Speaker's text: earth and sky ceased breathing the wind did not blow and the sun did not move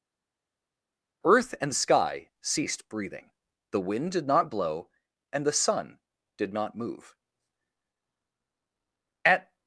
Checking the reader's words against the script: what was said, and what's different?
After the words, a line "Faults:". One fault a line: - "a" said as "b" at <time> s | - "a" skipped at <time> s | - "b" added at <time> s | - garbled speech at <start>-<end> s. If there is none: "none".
earth and sky ceased breathing the wind did not blow and the sun did not move at
Faults:
- "at" added at 9.2 s